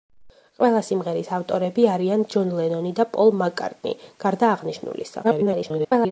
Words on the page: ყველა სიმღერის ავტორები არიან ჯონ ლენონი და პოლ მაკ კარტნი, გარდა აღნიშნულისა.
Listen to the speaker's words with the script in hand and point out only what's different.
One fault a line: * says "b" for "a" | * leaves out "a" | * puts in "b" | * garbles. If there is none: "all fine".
* garbles